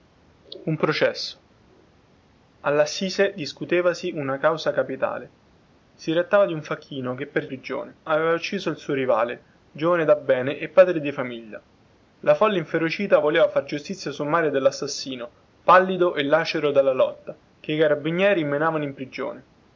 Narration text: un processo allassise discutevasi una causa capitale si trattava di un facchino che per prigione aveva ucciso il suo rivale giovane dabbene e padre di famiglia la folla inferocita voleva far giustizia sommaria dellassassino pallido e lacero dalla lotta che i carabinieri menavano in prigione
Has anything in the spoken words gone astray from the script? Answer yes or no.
no